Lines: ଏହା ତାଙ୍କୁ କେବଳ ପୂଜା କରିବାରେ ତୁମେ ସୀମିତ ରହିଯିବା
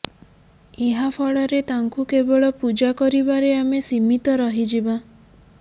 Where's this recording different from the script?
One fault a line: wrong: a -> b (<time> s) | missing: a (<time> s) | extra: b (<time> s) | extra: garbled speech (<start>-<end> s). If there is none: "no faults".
extra: ଫଳରେ (1.2 s)
wrong: ତୁମେ -> ଆମେ (3.6 s)